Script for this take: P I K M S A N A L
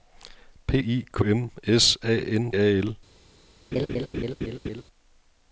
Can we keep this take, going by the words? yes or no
yes